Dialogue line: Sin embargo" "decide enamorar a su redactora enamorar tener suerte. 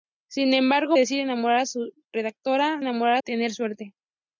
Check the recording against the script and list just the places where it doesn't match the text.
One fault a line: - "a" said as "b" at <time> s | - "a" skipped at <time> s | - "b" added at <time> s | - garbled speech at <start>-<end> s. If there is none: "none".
none